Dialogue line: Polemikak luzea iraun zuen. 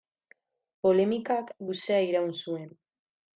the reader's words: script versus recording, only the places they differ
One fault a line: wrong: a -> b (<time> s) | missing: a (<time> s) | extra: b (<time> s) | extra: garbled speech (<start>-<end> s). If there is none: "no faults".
no faults